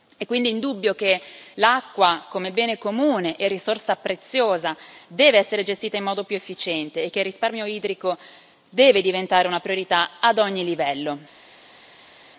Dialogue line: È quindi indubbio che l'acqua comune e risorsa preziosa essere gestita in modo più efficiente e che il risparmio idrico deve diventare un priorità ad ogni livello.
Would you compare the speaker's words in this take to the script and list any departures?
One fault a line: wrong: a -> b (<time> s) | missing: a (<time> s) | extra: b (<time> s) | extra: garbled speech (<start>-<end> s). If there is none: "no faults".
extra: come bene (2.3 s)
extra: deve (5.1 s)
wrong: un -> una (9.5 s)